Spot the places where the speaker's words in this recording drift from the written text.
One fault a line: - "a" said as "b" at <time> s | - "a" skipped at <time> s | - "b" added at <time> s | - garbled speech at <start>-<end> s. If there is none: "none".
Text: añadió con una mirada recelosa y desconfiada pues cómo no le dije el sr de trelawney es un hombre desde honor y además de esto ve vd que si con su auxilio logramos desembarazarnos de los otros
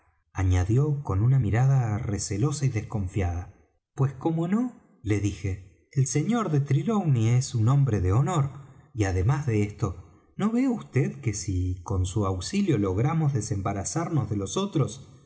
- "desde" said as "de" at 8.0 s
- "no" added at 10.3 s